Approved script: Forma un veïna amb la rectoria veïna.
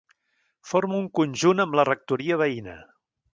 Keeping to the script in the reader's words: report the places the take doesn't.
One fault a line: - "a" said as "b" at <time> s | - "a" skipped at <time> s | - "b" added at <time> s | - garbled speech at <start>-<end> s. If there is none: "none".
- "veïna" said as "conjunt" at 1.2 s